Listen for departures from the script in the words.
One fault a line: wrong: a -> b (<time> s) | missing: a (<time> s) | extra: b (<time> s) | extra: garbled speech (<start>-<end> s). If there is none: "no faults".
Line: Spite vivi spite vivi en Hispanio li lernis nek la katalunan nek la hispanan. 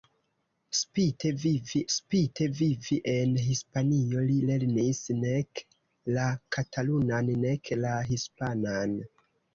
no faults